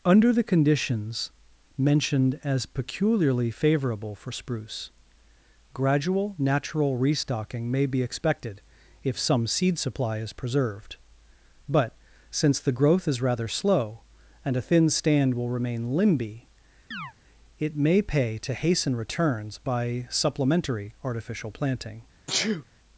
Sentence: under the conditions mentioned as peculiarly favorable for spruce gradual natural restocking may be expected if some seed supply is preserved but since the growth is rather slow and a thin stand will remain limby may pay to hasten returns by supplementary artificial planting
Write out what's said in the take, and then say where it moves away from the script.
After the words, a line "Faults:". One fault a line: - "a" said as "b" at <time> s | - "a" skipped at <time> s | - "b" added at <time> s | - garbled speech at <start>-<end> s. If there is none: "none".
under the conditions mentioned as peculiarly favorable for spruce gradual natural restocking may be expected if some seed supply is preserved but since the growth is rather slow and a thin stand will remain limby it may pay to hasten returns by supplementary artificial planting
Faults:
- "it" added at 17.6 s